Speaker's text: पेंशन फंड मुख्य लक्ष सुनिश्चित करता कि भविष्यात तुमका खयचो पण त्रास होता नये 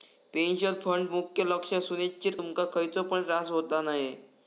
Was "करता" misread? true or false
true